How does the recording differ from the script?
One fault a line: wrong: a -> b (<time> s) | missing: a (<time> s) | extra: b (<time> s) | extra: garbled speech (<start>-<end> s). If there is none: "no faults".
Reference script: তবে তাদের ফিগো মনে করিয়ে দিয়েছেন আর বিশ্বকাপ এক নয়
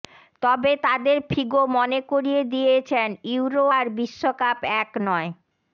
extra: ইউরো (3.3 s)